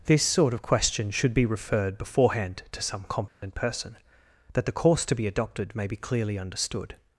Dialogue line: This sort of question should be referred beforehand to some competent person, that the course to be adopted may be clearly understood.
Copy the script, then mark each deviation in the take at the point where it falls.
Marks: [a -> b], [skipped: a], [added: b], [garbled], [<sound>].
This sort of question should be referred beforehand to some competent [dropout] person, that the course to be adopted may be clearly understood.